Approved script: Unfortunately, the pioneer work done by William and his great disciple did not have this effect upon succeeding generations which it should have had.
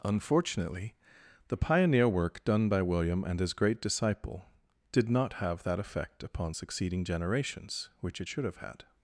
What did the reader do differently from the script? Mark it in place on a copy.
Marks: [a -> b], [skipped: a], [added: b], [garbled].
Unfortunately, the pioneer work done by William and his great disciple did not have [this -> that] effect upon succeeding generations which it should have had.